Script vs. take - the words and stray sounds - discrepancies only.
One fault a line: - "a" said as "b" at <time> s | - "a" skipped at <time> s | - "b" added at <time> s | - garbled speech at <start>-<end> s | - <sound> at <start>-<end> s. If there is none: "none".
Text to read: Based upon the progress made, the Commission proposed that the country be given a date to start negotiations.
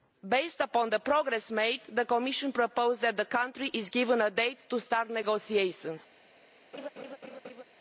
- laugh at 6.7-7.6 s